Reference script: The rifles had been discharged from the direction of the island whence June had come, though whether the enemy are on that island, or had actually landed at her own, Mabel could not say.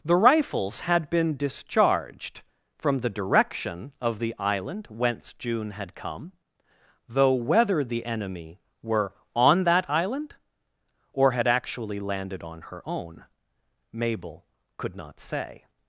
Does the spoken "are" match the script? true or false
false